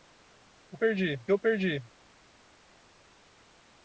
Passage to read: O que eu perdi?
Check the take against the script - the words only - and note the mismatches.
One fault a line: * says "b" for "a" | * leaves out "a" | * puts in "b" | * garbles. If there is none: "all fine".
* says "perdi" for "que"